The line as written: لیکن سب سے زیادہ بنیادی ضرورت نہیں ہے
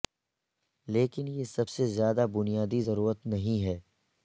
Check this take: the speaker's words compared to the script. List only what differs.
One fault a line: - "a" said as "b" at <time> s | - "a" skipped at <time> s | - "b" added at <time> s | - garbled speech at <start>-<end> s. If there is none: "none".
- "یہ" added at 1.3 s